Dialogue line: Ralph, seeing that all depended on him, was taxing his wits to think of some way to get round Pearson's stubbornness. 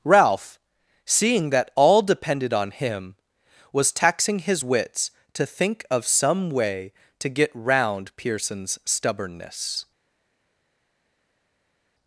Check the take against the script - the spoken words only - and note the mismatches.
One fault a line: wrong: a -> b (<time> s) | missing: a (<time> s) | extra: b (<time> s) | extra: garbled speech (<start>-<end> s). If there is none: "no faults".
no faults